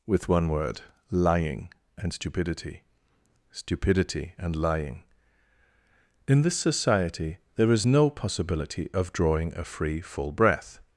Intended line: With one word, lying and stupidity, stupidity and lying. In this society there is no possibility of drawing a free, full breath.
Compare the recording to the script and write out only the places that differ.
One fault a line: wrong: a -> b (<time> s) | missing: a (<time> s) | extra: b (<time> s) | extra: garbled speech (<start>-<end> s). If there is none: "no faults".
no faults